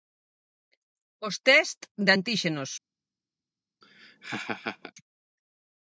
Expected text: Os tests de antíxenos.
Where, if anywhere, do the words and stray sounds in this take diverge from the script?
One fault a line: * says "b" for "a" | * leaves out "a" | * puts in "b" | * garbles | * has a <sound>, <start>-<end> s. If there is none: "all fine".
* has a laugh, 3.8-4.9 s